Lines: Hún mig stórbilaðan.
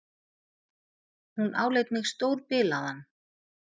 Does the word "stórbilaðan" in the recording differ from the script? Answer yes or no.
no